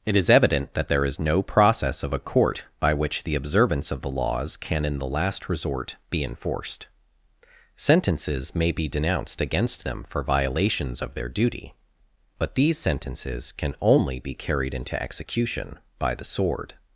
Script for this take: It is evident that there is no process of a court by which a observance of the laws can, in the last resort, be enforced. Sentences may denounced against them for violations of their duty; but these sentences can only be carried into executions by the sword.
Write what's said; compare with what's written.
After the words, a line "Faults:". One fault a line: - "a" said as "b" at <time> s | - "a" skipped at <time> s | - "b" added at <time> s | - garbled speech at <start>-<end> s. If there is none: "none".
It is evident that there is no process of a court by which the observance of the laws can, in the last resort, be enforced. Sentences may be denounced against them for violations of their duty; but these sentences can only be carried into execution by the sword.
Faults:
- "a" said as "the" at 3.2 s
- "be" added at 8.7 s
- "executions" said as "execution" at 15.0 s